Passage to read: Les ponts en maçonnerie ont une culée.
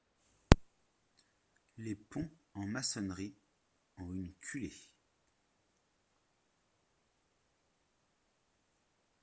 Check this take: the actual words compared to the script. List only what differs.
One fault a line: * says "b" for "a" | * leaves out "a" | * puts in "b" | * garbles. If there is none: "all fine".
all fine